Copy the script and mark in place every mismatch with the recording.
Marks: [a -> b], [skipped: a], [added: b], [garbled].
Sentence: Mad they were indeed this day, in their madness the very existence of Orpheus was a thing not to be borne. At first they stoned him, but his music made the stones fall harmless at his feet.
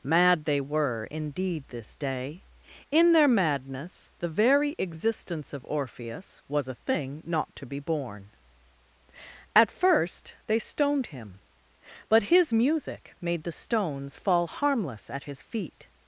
Mad they were indeed this day, in their madness the very existence of Orpheus was a thing not to be borne. At first they stoned him, but his music made the stones fall harmless at his feet.